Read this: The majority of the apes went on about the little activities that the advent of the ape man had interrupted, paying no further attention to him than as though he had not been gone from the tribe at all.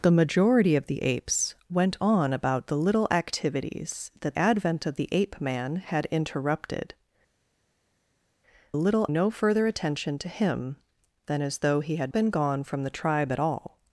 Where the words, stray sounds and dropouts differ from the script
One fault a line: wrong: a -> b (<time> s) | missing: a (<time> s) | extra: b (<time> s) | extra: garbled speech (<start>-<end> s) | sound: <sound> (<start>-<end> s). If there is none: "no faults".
missing: the (4.3 s)
wrong: paying -> little (8.8 s)
missing: not (12.1 s)